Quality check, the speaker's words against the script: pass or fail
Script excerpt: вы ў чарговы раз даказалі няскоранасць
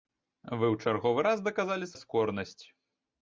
pass